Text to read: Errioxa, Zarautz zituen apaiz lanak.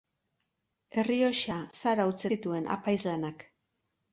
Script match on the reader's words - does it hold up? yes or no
yes